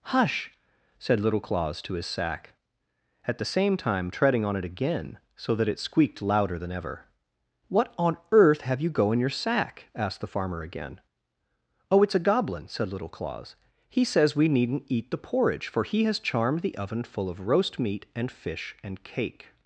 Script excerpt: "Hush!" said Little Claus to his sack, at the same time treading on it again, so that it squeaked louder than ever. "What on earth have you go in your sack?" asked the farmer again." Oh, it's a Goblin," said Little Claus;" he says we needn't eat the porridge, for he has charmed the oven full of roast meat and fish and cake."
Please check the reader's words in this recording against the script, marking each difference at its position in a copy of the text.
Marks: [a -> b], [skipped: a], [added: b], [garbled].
"Hush!" said Little Claus to his sack, at the same time treading on it again, so that it squeaked louder than ever. "What on earth have you go in your sack?" asked the farmer again." Oh, it's a Goblin," said Little Claus;" he says we needn't eat the porridge, for he has charmed the oven full of roast meat and fish and cake."